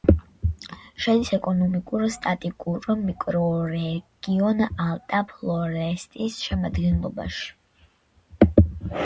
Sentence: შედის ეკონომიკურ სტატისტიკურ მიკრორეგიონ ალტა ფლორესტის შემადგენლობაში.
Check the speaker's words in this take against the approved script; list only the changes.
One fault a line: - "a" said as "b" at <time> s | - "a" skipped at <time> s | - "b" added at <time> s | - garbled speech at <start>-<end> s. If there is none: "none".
none